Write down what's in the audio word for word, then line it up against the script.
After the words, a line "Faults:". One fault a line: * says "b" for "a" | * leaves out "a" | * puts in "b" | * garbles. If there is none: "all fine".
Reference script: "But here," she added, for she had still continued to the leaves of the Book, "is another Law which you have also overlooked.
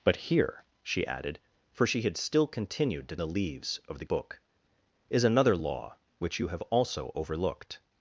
"But here," she added, for she had still continued to the leaves of the Book, "is another Law which you have also overlooked.
Faults:
all fine